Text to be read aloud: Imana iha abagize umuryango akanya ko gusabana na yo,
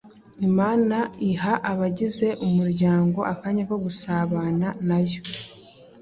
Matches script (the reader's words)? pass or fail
pass